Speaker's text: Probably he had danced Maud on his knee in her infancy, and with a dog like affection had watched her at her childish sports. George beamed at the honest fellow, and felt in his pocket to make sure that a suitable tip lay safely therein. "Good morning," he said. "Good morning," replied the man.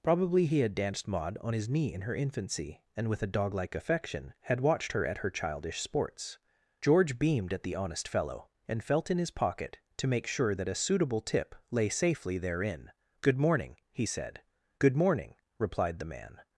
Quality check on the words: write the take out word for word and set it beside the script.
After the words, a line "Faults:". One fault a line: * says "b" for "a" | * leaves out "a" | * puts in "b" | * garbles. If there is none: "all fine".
Probably he had danced Maud on his knee in her infancy, and with a dog like affection had watched her at her childish sports. George beamed at the honest fellow, and felt in his pocket to make sure that a suitable tip lay safely therein. "Good morning," he said. "Good morning," replied the man.
Faults:
all fine